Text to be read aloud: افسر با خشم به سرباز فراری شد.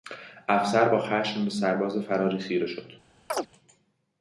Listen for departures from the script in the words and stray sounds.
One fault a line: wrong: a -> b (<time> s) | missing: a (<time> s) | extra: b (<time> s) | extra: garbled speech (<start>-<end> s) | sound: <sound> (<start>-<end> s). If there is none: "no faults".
extra: خیره (2.4 s)
sound: chirp (3.3-3.5 s)